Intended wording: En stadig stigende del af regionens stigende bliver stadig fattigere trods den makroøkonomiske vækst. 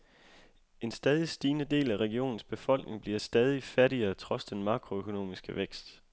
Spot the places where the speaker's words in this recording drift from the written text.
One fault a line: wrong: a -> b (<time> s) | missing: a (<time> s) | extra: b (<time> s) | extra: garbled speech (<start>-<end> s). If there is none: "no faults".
wrong: stigende -> befolkning (2.4 s)